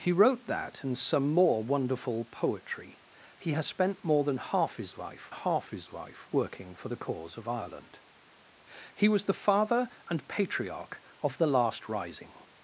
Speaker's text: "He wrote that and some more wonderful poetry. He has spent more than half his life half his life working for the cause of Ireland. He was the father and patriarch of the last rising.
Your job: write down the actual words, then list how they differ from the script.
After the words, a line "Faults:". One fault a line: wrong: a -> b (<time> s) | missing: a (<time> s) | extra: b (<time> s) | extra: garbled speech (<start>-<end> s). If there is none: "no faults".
"He wrote that and some more wonderful poetry. He has spent more than half his life half his life working for the cause of Ireland. He was the father and patriarch of the last rising.
Faults:
no faults